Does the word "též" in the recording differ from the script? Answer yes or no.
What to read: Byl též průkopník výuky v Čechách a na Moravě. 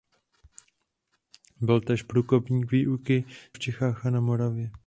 no